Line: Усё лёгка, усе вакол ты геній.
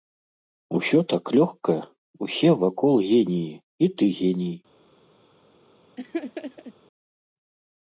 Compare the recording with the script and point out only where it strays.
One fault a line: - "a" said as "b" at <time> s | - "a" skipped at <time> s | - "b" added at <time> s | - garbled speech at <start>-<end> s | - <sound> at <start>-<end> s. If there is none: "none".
- "так" added at 1.1 s
- "геніі і" added at 3.1 s
- laugh at 6.0-6.7 s